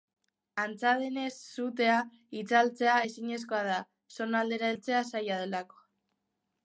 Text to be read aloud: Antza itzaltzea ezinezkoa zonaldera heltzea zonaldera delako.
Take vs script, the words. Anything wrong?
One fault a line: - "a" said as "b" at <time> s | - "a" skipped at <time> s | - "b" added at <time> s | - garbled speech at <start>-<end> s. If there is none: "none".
- "denez sutea" added at 1.0 s
- "da" added at 3.7 s
- "zonaldera" said as "zaila" at 5.1 s